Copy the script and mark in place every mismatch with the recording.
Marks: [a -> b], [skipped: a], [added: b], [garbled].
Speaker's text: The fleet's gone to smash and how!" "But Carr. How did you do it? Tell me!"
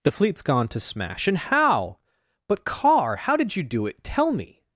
The fleet's gone to smash and how!" "But Carr. How did you do it? Tell me!"